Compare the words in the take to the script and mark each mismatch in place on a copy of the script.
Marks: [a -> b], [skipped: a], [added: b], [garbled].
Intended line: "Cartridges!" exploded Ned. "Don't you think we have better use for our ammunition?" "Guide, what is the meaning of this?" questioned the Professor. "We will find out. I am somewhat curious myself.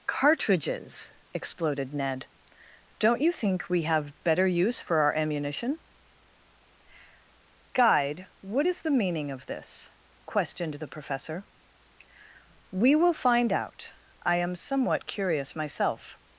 "Cartridges!" exploded Ned. "Don't you think we have better use for our ammunition?" "Guide, what is the meaning of this?" questioned the Professor. "We will find out. I am somewhat curious myself.